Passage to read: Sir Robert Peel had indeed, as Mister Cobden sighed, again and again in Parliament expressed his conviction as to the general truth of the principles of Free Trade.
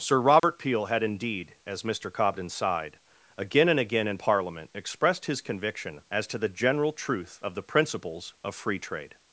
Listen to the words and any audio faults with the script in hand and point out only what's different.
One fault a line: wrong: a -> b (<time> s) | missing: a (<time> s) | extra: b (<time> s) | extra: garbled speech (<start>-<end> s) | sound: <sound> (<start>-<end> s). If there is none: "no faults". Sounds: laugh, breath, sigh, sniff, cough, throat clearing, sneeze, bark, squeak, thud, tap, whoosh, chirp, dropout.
sound: dropout (0.4-0.4 s)